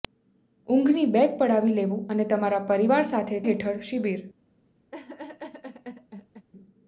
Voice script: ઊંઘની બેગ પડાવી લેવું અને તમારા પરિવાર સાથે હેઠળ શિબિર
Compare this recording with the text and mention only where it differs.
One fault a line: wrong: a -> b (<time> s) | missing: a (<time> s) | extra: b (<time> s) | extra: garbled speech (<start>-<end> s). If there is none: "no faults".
no faults